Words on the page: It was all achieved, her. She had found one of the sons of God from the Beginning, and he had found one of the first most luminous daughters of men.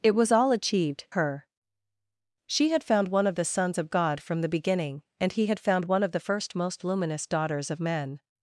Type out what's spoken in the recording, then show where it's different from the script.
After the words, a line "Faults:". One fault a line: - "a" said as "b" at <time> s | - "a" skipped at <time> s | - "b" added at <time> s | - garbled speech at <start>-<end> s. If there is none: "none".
It was all achieved, her. She had found one of the sons of God from the Beginning, and he had found one of the first most luminous daughters of men.
Faults:
none